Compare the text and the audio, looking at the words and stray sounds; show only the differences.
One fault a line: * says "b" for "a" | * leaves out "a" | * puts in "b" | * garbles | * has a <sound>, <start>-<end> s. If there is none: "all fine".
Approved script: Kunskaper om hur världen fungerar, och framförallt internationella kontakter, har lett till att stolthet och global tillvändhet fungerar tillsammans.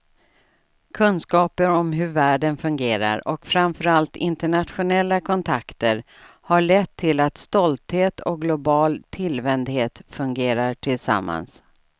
all fine